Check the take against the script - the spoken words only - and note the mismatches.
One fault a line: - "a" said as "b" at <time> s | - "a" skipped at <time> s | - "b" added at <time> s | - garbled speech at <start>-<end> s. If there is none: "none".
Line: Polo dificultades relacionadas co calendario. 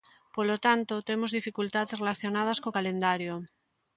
- "tanto temos" added at 0.7 s